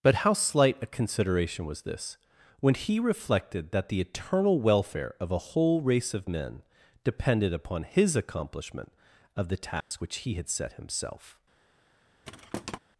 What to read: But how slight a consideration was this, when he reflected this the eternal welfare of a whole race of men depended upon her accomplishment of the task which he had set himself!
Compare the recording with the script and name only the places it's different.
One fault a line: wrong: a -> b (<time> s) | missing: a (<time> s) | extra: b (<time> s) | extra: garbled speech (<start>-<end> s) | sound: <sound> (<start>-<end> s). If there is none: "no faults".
wrong: this -> that (3.7 s)
wrong: her -> his (7.8 s)
sound: dropout (9.8-9.9 s)
sound: thud (12.2-12.8 s)